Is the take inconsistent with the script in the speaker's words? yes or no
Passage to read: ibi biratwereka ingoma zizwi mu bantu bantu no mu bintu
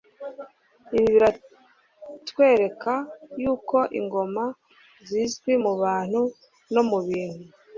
yes